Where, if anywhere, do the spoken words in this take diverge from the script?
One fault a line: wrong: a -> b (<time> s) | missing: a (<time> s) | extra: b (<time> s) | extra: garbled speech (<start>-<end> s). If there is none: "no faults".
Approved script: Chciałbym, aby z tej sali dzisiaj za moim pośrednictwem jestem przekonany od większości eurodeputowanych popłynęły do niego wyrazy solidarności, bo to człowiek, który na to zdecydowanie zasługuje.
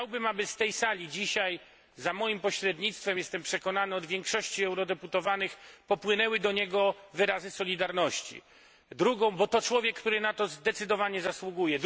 no faults